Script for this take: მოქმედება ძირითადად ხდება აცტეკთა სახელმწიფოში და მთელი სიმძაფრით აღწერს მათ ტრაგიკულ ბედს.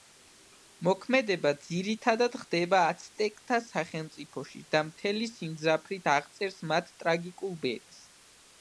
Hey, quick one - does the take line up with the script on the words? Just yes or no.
yes